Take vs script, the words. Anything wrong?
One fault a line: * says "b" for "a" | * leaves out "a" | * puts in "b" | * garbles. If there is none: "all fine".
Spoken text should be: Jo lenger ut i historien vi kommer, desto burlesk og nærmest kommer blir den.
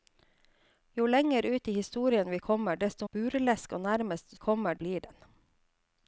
all fine